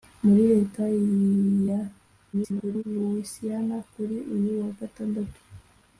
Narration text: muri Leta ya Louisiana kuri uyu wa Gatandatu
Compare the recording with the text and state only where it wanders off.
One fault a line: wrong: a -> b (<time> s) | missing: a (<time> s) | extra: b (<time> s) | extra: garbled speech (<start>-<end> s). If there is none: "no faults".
extra: garbled speech (2.3-2.8 s)